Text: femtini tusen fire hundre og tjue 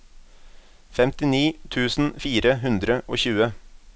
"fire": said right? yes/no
yes